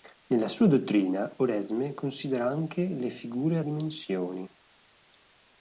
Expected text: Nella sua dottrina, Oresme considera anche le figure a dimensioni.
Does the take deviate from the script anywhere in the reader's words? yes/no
no